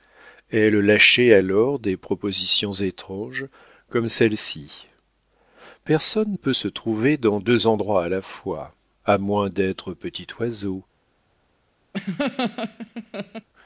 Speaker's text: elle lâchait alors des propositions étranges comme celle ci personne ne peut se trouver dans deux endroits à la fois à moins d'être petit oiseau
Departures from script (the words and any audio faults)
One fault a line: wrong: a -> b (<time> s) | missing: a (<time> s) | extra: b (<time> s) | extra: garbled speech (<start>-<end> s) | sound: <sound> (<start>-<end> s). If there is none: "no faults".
missing: ne (6.3 s)
sound: laugh (11.9-13.5 s)